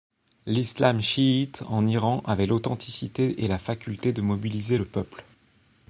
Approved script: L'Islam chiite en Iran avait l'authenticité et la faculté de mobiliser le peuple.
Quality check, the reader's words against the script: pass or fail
pass